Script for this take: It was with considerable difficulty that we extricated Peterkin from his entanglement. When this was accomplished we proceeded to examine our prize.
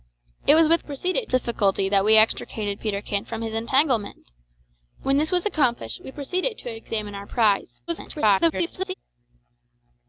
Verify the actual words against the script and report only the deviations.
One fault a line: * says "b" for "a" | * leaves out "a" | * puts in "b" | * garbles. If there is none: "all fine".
* says "proceeded" for "considerable"
* garbles